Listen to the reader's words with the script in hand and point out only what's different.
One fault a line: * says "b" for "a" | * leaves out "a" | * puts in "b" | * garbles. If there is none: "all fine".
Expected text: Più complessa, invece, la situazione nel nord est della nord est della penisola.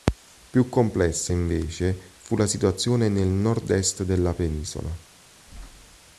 * puts in "fu"
* leaves out "nord est della"